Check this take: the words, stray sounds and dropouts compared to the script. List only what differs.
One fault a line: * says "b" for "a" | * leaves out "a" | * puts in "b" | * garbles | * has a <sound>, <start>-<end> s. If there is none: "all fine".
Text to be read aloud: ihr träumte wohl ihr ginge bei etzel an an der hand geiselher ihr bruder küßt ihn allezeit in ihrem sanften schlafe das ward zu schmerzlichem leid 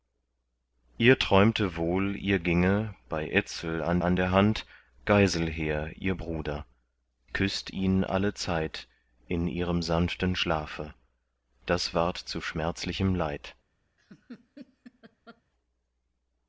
* has a laugh, 14.0-15.4 s